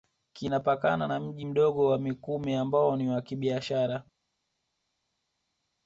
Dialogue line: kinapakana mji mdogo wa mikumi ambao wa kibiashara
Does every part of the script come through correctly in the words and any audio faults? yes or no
no